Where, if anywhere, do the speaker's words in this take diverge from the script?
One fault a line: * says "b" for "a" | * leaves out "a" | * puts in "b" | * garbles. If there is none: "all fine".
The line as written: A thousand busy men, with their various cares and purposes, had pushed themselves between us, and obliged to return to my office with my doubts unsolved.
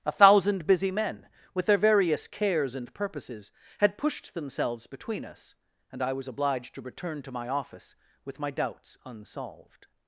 * puts in "I was"